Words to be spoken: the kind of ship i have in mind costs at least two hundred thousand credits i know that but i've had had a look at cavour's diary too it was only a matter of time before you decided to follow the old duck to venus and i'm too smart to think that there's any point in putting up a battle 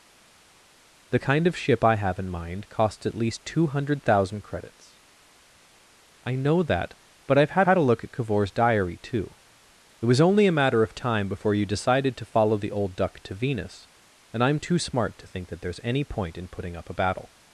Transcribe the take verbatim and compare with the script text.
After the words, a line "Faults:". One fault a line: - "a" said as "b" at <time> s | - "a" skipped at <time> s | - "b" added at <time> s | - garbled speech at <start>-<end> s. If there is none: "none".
the kind of ship i have in mind costs at least two hundred thousand credits i know that but i've had had a look at cavour's diary too it was only a matter of time before you decided to follow the old duck to venus and i'm too smart to think that there's any point in putting up a battle
Faults:
none